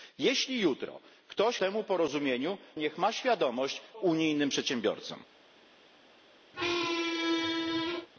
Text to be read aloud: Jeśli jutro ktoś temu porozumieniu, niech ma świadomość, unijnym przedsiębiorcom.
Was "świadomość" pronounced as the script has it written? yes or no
yes